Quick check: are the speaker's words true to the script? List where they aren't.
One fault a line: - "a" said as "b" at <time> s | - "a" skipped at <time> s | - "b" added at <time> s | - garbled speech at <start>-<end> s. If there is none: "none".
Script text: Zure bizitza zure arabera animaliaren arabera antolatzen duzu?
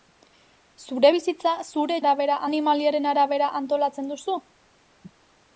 none